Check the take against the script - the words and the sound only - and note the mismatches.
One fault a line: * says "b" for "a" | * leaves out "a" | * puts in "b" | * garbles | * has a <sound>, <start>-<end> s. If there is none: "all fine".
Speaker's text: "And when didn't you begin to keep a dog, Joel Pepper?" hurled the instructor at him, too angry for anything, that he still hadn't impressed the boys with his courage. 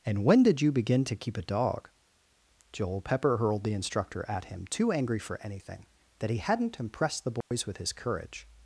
* says "did" for "didn't"
* leaves out "still"
* has a dropout, 7.4-7.5 s